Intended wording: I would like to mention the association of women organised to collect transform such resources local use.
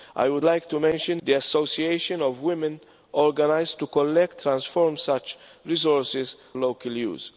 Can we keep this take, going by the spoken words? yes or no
yes